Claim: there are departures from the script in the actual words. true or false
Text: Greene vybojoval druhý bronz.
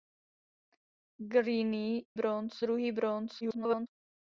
true